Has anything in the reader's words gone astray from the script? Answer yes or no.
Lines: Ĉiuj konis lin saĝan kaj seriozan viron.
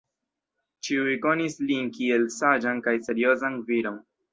yes